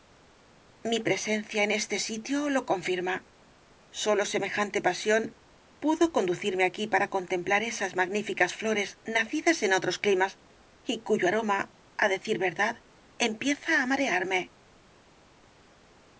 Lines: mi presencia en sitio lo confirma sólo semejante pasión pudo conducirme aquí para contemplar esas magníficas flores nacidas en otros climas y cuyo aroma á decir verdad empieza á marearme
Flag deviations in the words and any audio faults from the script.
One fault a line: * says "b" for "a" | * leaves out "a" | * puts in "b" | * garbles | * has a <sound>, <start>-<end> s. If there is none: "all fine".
* puts in "este"